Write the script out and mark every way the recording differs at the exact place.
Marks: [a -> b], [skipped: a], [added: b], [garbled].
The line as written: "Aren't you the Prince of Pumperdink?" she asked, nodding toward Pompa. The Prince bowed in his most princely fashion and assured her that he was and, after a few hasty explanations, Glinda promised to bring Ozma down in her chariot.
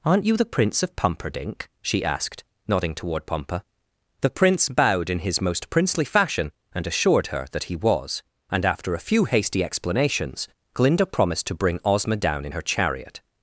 "Aren't you the Prince of Pumperdink?" she asked, nodding toward Pompa. The Prince bowed in his most princely fashion and assured her that he was and, after a few hasty explanations, Glinda promised to bring Ozma down in her chariot.